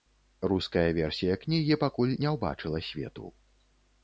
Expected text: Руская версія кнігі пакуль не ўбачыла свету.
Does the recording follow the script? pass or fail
pass